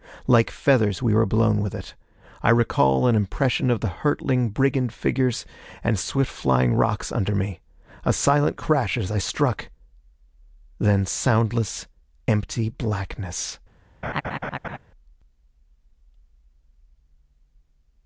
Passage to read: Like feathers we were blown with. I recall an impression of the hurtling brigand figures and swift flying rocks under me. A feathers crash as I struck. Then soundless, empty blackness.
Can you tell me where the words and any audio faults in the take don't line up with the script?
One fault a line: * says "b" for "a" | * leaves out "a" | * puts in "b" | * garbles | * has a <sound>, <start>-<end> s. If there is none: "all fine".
* puts in "it"
* says "silent" for "feathers"
* has a laugh, 14.0-14.8 s